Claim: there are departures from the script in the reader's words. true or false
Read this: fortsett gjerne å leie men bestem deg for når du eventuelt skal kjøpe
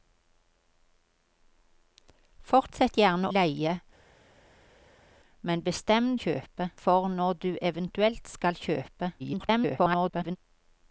true